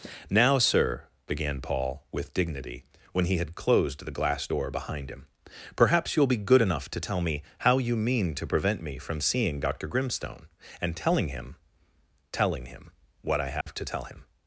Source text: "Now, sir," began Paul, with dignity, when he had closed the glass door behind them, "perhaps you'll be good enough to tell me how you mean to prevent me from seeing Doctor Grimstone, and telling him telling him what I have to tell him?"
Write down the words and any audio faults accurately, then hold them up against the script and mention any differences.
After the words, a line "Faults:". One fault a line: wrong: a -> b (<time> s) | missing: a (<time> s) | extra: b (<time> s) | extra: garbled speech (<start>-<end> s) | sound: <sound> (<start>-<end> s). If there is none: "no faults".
"Now, sir," began Paul, with dignity, when he had closed the glass door behind him, "perhaps you'll be good enough to tell me how you mean to prevent me from seeing Doctor Grimstone, and telling him telling him what I have to tell him?"
Faults:
wrong: them -> him (5.1 s)
sound: dropout (13.6-13.7 s)